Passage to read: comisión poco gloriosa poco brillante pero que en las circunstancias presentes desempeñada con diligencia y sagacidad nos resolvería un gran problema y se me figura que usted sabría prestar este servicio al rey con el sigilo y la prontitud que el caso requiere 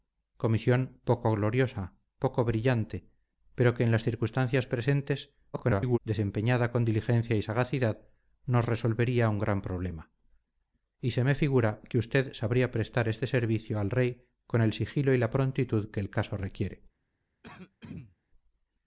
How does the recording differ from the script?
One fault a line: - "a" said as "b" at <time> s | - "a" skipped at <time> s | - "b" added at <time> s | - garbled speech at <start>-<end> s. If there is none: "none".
- garbled speech at 5.5-6.0 s